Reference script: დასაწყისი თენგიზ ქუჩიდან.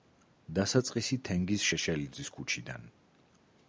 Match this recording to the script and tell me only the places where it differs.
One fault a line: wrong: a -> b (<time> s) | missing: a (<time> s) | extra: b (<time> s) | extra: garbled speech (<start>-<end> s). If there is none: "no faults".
extra: შეშელიძის (1.7 s)